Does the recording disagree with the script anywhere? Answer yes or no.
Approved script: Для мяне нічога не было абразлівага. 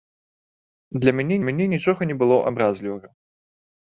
yes